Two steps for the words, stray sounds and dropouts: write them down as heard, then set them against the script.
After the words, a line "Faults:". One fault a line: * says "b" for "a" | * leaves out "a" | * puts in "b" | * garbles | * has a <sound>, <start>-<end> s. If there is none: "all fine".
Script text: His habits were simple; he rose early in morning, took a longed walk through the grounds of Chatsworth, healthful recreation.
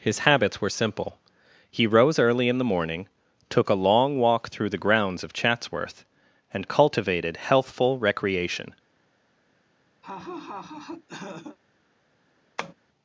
His habits were simple; he rose early in the morning, took a long walk through the grounds of Chatsworth, and cultivated healthful recreation.
Faults:
* puts in "the"
* says "long" for "longed"
* puts in "and cultivated"
* has a laugh, 10.0-11.6 s
* has a tap, 12.6-12.7 s